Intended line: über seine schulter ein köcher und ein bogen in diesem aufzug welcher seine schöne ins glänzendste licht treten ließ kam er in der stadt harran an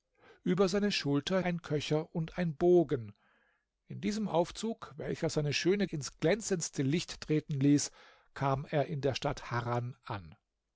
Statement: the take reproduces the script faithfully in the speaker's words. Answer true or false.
true